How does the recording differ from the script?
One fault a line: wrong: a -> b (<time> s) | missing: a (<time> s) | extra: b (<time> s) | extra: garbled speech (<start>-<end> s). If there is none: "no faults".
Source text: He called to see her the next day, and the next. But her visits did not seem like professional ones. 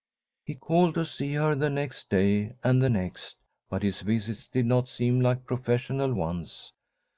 wrong: her -> his (3.8 s)